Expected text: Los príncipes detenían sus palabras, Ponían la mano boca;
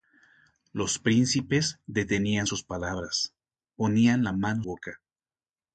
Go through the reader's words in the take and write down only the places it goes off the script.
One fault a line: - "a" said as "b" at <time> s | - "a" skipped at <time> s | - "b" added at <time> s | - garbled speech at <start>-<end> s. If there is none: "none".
none